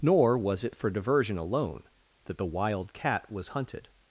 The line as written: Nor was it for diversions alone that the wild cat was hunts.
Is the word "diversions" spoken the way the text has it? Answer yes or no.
no